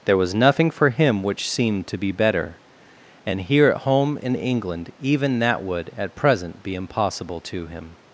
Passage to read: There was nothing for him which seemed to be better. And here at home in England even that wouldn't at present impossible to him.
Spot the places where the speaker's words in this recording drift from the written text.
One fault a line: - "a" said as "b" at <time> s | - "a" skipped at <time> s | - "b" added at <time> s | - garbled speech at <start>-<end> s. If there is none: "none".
- "wouldn't" said as "would" at 5.6 s
- "be" added at 6.6 s